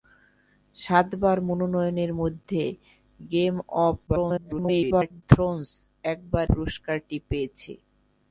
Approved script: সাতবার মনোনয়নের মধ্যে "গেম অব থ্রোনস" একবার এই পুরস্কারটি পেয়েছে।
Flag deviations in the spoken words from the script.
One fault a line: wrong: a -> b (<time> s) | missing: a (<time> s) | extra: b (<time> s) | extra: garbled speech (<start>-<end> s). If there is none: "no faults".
extra: garbled speech (4.1-5.2 s)
missing: এই (6.5 s)